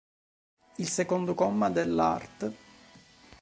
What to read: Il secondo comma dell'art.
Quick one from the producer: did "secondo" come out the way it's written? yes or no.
yes